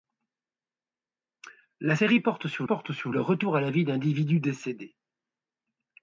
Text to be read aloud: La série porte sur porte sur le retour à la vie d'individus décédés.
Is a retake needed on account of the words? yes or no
no